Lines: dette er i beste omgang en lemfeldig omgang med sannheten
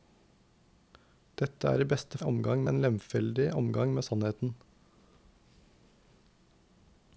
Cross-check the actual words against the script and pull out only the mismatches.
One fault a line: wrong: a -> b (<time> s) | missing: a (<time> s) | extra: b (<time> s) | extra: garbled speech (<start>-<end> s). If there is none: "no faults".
no faults